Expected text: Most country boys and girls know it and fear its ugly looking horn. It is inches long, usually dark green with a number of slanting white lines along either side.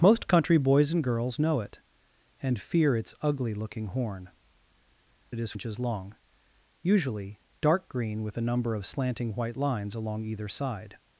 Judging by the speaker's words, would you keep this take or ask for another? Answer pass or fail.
pass